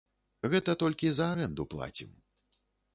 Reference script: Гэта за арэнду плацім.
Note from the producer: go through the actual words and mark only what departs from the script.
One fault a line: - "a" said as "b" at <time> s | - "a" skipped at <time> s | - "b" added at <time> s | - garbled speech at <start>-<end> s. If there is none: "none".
- "толькі" added at 0.8 s